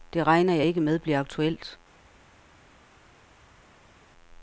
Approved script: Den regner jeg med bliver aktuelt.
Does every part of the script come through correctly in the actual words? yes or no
no